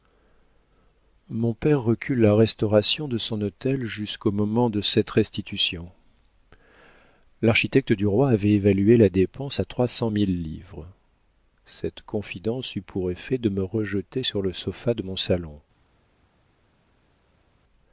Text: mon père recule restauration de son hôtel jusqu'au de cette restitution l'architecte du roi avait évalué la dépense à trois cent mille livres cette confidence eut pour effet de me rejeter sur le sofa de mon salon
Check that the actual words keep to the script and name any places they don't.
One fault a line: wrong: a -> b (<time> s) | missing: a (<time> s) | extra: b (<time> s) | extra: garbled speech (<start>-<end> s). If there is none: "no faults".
extra: la (2.2 s)
extra: moment (4.3 s)